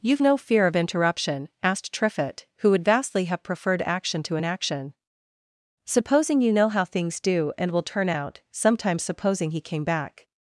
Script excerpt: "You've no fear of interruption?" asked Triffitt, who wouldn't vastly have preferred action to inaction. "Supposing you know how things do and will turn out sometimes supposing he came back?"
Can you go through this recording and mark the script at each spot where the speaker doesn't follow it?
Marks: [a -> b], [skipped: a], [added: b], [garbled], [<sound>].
"You've no fear of interruption?" asked Triffitt, who [wouldn't -> would] vastly have preferred action to inaction. "Supposing you know how things do and will turn out sometimes supposing he came back?"